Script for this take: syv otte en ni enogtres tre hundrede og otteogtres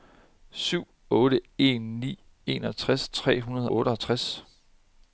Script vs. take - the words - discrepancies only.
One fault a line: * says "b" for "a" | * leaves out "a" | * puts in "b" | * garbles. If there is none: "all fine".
* leaves out "og"